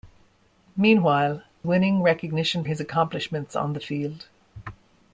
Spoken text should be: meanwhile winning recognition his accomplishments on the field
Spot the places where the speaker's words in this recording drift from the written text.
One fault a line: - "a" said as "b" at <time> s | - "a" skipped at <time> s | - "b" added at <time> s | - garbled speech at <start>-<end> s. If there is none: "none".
none